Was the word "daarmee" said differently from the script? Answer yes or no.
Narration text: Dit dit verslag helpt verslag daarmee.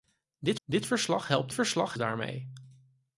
no